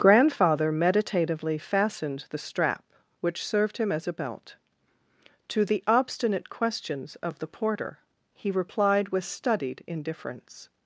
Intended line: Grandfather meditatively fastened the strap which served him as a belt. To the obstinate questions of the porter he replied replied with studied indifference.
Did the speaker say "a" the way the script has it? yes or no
yes